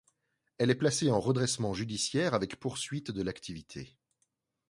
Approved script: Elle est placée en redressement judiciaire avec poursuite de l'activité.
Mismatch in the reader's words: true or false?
false